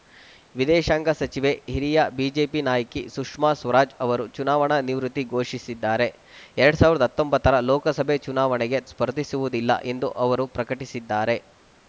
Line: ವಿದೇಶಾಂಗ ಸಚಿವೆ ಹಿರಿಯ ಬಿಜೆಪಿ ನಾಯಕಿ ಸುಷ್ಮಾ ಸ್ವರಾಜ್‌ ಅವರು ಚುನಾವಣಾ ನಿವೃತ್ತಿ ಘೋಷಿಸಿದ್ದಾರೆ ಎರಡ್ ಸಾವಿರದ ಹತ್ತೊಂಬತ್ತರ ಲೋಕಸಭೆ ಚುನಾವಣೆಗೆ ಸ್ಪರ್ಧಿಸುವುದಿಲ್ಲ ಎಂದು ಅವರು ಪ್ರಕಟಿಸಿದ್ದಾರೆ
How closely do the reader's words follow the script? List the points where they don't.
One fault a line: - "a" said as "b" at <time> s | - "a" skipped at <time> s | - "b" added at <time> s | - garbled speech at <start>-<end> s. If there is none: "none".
none